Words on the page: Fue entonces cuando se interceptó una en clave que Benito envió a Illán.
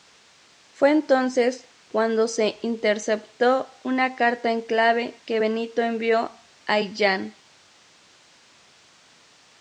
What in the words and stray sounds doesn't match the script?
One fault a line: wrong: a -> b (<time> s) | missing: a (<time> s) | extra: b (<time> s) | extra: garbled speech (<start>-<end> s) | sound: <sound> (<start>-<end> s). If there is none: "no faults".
extra: carta (4.1 s)